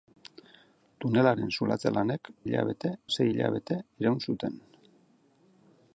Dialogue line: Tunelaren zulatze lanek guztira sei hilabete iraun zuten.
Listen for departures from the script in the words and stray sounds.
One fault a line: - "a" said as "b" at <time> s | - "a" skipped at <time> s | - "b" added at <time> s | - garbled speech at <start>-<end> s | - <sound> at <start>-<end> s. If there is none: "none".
- "guztira" said as "hilabete" at 2.4 s